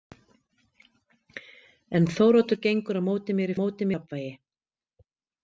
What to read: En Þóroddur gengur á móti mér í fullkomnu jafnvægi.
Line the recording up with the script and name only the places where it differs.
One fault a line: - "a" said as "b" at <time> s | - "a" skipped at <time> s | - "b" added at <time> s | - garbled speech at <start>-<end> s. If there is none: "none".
- "fullkomnu" said as "móti" at 3.6 s